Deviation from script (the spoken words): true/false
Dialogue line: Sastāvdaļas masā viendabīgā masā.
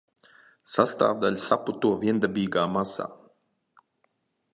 true